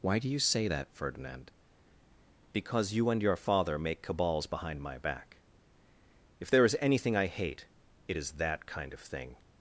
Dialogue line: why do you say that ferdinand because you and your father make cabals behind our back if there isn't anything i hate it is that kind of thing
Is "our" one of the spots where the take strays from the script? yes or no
yes